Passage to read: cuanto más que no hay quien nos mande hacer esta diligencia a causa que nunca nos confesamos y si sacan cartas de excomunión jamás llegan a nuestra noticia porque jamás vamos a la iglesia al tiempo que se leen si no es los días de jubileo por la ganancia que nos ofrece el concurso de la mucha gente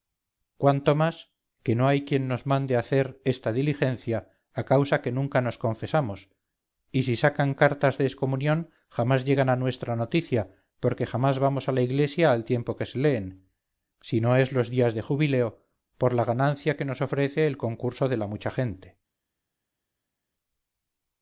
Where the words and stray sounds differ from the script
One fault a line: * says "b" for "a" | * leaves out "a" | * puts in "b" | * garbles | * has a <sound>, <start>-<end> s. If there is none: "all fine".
all fine